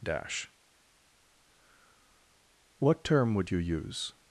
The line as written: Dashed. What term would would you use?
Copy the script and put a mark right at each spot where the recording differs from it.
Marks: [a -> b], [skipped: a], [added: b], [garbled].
[Dashed. -> Dash] What term would [skipped: would] you use?